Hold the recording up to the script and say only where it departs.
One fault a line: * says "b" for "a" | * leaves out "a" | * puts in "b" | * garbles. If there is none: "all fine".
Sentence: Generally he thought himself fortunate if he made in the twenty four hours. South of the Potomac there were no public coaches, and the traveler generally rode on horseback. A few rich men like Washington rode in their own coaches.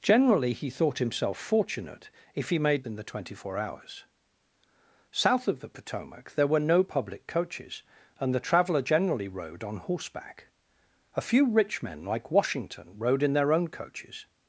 all fine